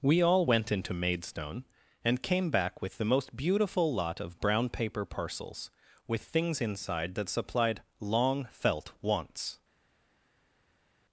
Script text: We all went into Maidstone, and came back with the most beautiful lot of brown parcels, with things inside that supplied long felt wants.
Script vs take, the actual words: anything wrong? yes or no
yes